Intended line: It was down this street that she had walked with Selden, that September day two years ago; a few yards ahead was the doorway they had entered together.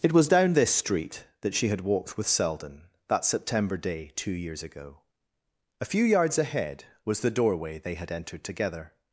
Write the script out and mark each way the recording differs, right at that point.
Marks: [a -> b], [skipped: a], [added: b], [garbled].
It was down this street that she had walked with Selden, that September day two years ago; a few yards ahead was the doorway they had entered together.